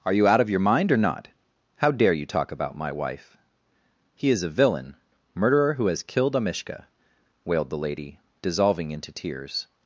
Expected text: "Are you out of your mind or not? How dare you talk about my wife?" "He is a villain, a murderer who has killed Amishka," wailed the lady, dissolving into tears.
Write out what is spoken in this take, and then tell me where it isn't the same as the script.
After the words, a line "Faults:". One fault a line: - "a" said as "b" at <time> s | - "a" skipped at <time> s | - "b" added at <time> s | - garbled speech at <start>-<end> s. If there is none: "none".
"Are you out of your mind or not? How dare you talk about my wife?" "He is a villain, murderer who has killed Amishka," wailed the lady, dissolving into tears.
Faults:
- "a" skipped at 5.0 s